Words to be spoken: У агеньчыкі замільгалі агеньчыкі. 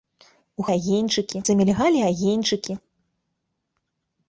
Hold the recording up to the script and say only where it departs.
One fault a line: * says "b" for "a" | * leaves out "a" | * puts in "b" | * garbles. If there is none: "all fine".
all fine